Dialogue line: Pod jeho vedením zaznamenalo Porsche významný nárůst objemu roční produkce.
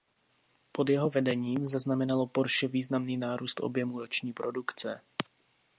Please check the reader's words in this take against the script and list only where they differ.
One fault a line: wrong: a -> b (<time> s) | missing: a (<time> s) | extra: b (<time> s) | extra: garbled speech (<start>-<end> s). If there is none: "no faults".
no faults